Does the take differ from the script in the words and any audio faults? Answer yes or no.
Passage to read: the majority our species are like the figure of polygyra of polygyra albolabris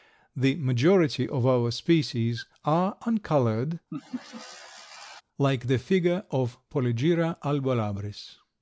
yes